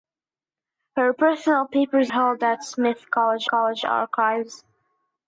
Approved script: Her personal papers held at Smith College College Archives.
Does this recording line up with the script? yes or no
yes